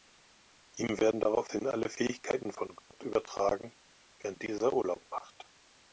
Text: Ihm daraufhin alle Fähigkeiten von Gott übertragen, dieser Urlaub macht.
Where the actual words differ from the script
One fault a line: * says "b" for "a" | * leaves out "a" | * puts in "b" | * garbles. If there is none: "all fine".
* puts in "werden"
* puts in "während"